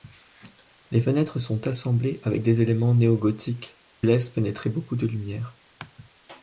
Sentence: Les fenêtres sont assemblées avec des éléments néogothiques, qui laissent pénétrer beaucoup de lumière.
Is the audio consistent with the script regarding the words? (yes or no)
no